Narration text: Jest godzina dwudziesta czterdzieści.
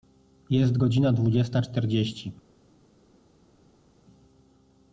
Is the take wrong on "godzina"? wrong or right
right